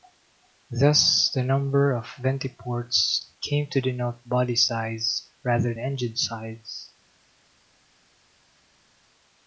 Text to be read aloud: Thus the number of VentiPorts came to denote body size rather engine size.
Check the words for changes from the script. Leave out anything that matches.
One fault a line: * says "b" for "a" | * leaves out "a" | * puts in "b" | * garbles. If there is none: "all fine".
all fine